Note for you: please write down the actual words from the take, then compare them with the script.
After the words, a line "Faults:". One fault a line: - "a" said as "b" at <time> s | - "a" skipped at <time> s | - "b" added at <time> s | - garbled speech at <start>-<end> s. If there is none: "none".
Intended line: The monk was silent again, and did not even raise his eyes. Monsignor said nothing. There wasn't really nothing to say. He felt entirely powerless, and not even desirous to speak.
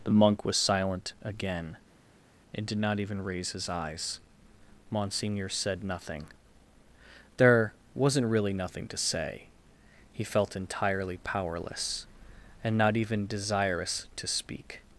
The monk was silent again, and did not even raise his eyes. Monsignor said nothing. There wasn't really nothing to say. He felt entirely powerless, and not even desirous to speak.
Faults:
none